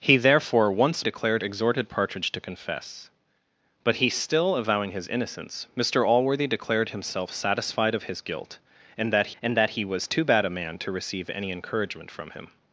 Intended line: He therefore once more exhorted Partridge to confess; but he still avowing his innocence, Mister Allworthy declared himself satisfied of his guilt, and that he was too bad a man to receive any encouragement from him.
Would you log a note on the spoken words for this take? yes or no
yes